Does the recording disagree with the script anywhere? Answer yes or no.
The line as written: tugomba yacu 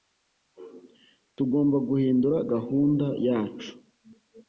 yes